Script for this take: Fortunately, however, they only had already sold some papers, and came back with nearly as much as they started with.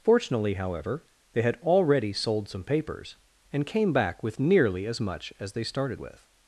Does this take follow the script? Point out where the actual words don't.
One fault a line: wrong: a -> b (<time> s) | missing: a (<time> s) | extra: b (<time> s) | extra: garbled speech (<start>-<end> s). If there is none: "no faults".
missing: only (1.4 s)